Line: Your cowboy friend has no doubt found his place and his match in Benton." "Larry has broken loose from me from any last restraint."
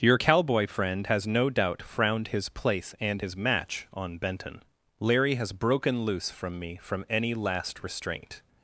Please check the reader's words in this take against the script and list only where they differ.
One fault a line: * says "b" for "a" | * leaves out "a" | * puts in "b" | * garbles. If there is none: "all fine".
* says "frowned" for "found"
* says "on" for "in"